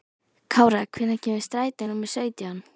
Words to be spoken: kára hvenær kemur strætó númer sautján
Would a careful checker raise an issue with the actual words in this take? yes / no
no